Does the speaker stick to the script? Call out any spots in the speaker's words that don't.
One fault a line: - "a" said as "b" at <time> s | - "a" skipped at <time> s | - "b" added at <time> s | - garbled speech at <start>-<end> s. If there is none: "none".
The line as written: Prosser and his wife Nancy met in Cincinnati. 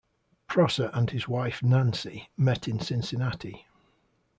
none